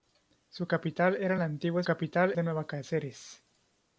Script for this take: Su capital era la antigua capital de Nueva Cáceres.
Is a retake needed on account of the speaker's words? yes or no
no